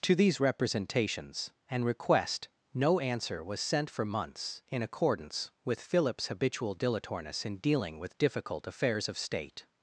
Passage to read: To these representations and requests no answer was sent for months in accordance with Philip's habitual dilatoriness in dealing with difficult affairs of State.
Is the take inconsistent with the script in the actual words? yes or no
yes